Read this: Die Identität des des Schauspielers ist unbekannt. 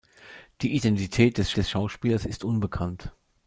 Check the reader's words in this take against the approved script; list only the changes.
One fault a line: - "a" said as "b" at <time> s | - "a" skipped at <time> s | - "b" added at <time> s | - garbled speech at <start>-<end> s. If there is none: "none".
none